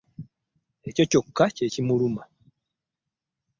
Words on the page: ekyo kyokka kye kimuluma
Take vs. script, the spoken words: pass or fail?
pass